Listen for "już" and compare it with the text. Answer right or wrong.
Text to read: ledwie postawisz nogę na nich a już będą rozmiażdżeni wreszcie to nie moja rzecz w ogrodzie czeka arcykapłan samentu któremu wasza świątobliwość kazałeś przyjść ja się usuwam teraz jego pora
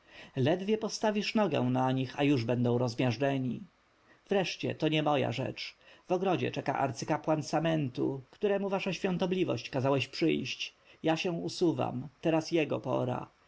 right